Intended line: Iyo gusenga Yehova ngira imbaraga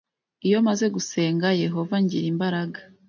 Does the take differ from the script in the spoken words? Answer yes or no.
yes